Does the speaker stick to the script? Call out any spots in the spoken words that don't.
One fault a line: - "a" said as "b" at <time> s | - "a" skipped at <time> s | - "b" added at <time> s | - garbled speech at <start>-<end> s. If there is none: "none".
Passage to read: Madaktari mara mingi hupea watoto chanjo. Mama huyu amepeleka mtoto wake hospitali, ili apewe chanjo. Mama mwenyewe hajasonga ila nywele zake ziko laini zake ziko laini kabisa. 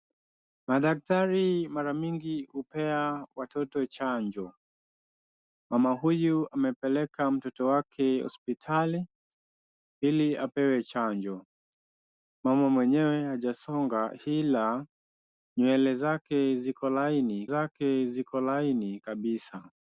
none